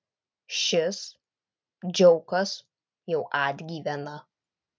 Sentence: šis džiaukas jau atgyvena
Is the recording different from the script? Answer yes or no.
no